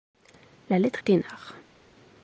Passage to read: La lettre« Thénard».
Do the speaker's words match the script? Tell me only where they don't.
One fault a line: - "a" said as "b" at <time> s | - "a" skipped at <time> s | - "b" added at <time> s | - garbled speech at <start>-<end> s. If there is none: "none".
none